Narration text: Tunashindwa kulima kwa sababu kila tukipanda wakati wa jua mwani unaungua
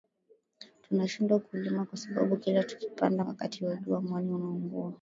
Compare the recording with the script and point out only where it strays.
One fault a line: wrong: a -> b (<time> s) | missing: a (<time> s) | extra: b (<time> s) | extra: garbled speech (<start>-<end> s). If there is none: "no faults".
no faults